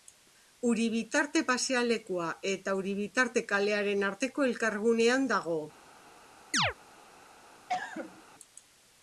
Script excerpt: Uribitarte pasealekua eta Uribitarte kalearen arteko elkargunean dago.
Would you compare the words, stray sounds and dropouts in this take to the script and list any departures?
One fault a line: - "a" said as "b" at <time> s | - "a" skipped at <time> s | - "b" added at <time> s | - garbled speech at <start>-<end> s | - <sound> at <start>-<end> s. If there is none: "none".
- chirp at 6.5-6.7 s
- cough at 7.7-8.2 s